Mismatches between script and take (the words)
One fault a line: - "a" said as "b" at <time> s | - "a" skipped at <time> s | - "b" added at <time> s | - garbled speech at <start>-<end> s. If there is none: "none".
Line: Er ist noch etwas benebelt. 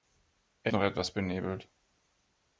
- "ist" skipped at 0.7 s